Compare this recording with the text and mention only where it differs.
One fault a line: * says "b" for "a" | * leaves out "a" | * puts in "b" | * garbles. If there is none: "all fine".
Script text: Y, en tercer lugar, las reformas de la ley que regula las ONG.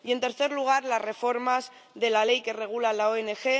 all fine